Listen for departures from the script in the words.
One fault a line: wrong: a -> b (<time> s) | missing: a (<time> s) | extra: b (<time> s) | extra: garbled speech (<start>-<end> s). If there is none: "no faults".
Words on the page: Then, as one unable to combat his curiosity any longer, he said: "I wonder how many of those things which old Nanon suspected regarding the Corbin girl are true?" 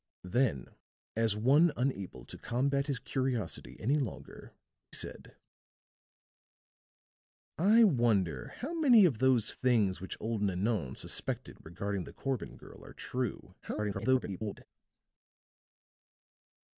missing: he (4.5 s)
extra: garbled speech (13.6-14.7 s)